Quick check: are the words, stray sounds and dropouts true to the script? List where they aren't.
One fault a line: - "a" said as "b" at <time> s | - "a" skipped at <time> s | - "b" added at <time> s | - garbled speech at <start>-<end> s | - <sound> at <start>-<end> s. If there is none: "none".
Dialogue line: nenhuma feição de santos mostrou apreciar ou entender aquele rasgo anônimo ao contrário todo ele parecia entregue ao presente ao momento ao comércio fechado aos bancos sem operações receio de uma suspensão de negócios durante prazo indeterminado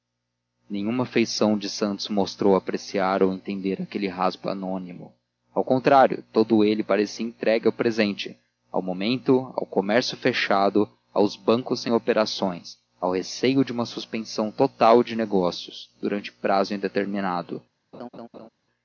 - "ao" added at 13.0 s
- "total" added at 14.5 s
- laugh at 17.9-18.5 s